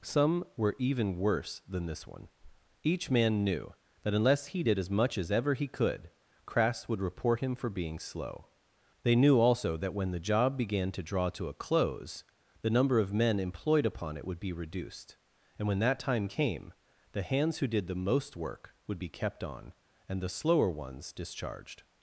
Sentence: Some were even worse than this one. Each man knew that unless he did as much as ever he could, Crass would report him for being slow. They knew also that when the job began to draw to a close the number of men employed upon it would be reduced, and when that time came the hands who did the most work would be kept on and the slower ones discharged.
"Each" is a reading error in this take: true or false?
false